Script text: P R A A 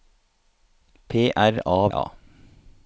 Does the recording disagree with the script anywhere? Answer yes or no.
no